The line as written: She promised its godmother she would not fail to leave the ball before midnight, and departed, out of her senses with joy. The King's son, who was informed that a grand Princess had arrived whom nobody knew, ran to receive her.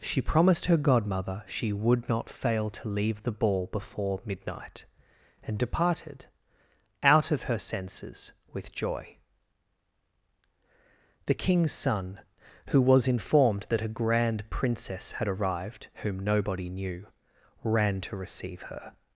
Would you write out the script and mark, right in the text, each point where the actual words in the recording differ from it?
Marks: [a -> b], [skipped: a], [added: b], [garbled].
She promised [its -> her] godmother she would not fail to leave the ball before midnight, and departed, out of her senses with joy. The King's son, who was informed that a grand Princess had arrived whom nobody knew, ran to receive her.